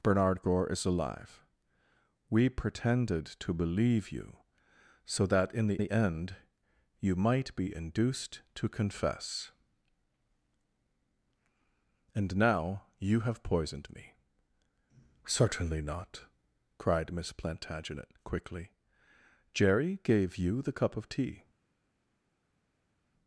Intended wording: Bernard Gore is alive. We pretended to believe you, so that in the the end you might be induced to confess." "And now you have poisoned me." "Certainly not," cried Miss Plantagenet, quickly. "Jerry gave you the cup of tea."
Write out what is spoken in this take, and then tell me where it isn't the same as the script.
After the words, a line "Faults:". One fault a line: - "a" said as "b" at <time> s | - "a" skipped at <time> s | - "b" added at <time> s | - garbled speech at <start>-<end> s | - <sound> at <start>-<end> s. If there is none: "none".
Bernard Gore is alive. We pretended to believe you, so that in the the end you might be induced to confess." "And now you have poisoned me." "Certainly not," cried Miss Plantagenet, quickly. "Jerry gave you the cup of tea."
Faults:
none